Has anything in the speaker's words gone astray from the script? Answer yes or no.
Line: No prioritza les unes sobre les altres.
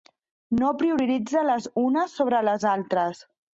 no